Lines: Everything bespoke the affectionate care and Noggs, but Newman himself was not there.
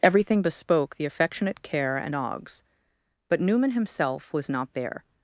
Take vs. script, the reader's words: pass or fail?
pass